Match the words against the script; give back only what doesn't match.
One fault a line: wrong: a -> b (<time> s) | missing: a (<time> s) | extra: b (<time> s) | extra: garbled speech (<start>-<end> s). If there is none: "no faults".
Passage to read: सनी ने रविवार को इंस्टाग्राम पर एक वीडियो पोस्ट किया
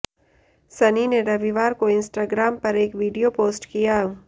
no faults